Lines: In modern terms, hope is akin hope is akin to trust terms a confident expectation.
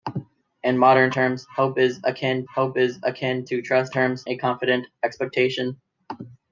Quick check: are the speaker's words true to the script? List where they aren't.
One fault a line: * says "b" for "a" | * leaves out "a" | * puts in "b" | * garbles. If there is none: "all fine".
all fine